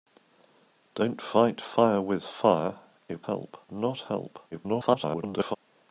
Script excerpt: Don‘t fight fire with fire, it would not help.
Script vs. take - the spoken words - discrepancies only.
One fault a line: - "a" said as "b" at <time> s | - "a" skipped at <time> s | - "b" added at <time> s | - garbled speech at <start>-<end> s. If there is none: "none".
- "would" said as "help" at 3.3 s
- garbled speech at 4.5-5.6 s